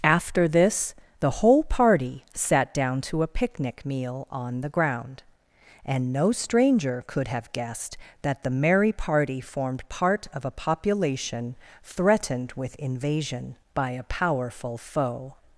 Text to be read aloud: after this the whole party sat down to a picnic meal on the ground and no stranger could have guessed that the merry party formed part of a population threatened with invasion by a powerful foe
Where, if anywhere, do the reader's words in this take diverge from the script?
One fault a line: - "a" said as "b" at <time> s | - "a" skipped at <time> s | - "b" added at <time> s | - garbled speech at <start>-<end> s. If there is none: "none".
none